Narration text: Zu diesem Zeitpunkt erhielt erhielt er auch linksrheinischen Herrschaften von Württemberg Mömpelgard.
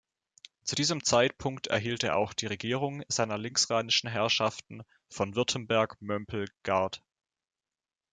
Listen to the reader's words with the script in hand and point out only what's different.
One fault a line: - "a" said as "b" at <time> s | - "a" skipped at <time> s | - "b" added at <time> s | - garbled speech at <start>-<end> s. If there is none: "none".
- "erhielt" skipped at 2.0 s
- "die Regierung seiner" added at 2.3 s